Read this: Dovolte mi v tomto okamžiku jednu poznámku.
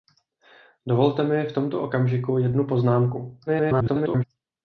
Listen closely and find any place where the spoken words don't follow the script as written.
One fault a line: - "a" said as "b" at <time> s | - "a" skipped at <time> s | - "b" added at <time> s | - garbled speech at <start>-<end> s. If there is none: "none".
- garbled speech at 3.5-4.2 s